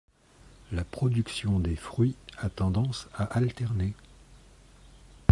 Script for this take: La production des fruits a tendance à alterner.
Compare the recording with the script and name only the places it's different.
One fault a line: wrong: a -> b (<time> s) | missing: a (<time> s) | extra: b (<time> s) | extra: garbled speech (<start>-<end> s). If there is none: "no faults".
no faults